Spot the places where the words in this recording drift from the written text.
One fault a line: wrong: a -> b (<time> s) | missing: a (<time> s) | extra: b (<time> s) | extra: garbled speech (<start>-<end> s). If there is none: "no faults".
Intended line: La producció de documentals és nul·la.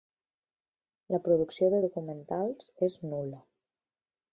no faults